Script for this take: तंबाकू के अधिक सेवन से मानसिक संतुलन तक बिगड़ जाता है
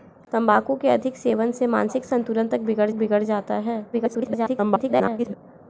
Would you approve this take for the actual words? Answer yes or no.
no